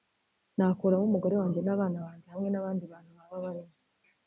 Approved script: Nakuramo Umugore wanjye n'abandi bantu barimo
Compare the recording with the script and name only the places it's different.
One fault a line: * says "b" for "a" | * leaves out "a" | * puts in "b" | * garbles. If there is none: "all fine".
* puts in "n'abana banjye hamwe"
* puts in "baba"